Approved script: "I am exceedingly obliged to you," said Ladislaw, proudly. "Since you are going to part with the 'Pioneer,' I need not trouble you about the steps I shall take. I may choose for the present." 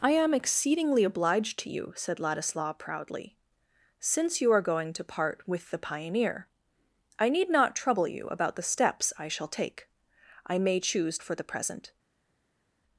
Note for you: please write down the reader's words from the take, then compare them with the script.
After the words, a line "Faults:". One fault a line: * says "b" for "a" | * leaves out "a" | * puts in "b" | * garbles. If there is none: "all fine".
"I am exceedingly obliged to you," said Ladislaw, proudly. "Since you are going to part with the 'Pioneer,' I need not trouble you about the steps I shall take. I may choose for the present."
Faults:
all fine